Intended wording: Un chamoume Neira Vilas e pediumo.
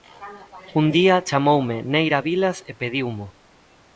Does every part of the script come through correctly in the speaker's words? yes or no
no